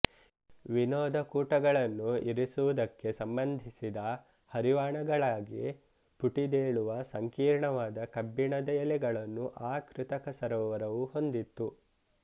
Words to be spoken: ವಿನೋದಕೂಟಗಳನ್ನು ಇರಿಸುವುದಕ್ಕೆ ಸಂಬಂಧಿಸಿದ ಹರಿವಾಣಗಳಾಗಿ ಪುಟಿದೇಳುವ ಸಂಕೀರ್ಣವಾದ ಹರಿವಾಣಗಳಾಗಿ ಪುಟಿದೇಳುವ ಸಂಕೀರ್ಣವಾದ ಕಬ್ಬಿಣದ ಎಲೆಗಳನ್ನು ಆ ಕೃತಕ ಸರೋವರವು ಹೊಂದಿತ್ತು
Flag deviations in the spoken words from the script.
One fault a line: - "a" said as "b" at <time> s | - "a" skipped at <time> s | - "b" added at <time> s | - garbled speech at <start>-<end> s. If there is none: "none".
- "ಹರಿವಾಣಗಳಾಗಿ ಪುಟಿದೇಳುವ ಸಂಕೀರ್ಣವಾದ" skipped at 8.1 s